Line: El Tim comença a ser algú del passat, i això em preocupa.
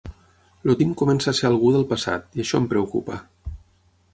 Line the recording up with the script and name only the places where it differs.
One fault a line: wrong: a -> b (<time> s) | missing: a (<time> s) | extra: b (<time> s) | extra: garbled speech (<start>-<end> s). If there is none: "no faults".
no faults